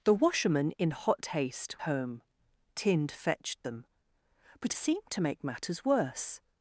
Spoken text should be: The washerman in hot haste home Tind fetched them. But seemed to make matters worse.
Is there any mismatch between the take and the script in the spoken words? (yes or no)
no